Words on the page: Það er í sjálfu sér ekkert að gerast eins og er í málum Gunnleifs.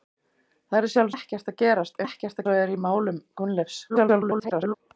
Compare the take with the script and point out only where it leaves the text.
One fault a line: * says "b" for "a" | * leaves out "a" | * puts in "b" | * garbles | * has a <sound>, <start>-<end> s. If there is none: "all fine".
* leaves out "sér"
* says "ekkert" for "eins"
* garbles